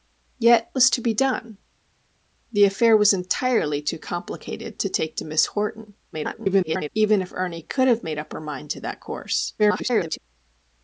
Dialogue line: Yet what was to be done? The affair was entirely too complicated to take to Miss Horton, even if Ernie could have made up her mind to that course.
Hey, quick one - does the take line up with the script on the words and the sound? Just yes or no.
no